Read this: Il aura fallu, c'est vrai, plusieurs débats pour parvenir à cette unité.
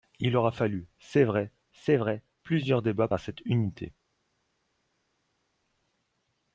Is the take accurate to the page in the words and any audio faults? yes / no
no